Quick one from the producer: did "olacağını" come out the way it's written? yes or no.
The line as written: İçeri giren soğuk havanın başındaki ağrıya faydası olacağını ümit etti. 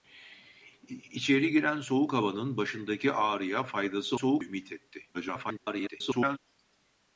no